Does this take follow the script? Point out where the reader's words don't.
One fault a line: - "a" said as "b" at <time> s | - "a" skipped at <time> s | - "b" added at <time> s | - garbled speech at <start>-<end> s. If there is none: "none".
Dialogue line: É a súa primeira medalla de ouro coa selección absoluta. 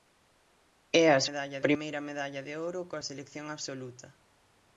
- "súa" said as "medalla" at 1.3 s